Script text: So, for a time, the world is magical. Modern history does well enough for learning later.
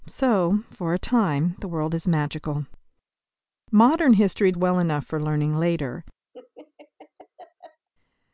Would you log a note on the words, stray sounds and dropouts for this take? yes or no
yes